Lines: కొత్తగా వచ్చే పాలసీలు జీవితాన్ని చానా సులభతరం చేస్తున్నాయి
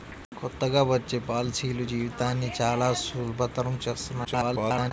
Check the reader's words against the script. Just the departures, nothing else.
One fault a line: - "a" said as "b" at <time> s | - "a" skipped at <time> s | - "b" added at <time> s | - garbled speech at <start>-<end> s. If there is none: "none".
- garbled speech at 4.2-4.9 s